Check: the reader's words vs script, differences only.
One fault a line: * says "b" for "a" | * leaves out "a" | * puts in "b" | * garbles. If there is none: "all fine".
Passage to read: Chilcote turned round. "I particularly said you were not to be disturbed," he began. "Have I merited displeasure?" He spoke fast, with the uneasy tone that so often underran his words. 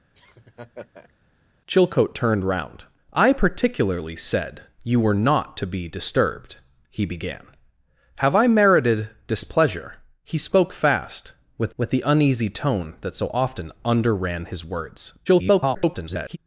* puts in "with"
* garbles